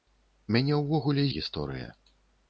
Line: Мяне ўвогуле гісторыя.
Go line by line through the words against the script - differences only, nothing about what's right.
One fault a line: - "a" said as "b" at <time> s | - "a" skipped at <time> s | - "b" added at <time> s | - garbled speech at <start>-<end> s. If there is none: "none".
none